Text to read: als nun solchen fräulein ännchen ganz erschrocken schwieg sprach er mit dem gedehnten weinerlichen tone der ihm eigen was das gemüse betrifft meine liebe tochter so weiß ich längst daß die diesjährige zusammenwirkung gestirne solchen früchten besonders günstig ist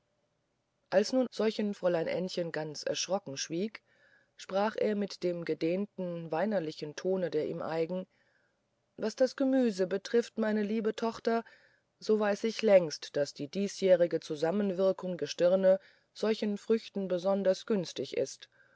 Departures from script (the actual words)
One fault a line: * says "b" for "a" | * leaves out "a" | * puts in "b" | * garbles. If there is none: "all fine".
all fine